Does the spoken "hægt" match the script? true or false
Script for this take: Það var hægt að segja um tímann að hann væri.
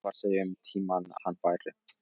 false